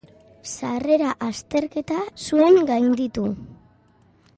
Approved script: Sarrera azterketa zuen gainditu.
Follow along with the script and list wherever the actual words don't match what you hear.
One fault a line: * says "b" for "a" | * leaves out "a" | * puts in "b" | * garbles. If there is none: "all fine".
all fine